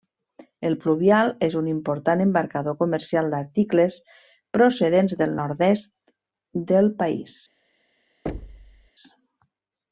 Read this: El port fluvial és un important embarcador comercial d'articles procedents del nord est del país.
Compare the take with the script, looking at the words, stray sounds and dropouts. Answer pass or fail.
fail